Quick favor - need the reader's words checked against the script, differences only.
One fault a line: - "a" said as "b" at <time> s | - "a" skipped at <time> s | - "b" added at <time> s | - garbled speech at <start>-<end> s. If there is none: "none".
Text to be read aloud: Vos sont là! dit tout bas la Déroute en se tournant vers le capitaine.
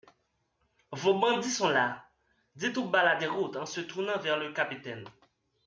- "bandits" added at 1.2 s